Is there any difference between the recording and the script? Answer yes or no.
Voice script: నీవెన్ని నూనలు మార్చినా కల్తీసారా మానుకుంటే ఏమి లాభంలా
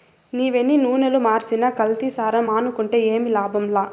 no